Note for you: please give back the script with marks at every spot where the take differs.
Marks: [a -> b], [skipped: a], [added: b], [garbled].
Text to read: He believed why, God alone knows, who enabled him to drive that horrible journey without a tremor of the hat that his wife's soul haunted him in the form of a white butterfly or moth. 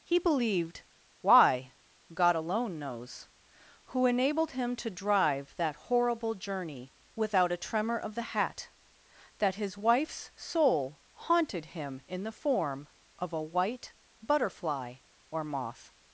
He believed why, God alone knows, who enabled him to drive that horrible journey without a tremor of the hat that his wife's soul haunted him in the form of a white butterfly or moth.